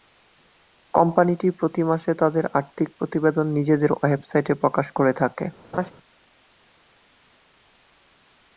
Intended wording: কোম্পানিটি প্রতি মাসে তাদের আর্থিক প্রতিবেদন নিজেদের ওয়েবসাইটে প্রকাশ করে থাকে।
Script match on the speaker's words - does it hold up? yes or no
yes